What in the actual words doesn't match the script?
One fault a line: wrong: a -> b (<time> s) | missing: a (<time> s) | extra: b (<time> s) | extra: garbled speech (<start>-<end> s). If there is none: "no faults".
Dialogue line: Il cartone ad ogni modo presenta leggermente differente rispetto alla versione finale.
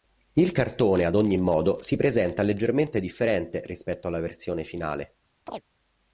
extra: si (1.8 s)